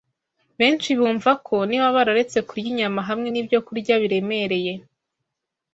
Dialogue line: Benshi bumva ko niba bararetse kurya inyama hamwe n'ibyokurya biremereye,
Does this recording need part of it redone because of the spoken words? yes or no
no